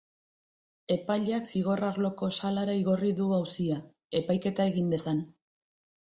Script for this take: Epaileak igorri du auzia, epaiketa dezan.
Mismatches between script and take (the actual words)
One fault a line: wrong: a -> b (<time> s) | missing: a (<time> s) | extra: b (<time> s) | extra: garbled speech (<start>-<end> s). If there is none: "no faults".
extra: zigor arloko salara (1.5 s)
extra: egin (4.7 s)